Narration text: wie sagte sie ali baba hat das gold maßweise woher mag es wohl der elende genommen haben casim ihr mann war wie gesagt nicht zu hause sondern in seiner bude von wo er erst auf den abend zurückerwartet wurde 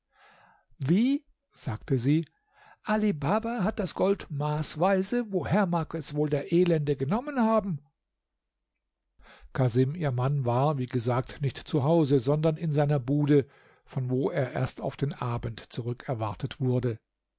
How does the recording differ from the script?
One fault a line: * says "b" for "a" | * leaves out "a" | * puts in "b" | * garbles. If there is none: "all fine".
all fine